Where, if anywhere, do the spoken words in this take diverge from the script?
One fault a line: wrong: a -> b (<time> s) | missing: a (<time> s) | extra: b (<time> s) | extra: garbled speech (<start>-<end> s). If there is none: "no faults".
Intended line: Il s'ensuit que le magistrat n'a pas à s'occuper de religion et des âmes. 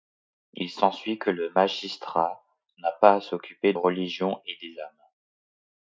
missing: de (3.7 s)